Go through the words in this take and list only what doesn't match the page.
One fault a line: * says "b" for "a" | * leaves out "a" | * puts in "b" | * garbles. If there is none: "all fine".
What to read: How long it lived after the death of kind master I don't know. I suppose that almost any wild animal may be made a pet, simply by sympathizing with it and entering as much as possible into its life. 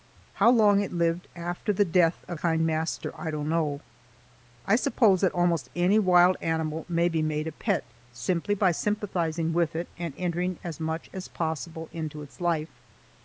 all fine